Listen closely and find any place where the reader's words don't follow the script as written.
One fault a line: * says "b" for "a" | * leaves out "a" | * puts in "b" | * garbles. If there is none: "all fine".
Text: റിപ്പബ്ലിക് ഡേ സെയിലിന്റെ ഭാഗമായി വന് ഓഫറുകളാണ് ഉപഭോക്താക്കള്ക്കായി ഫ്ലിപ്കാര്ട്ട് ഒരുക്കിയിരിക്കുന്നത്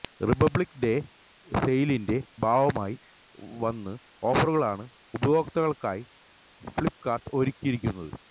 all fine